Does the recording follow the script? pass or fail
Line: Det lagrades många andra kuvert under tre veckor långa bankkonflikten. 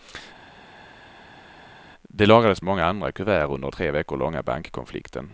pass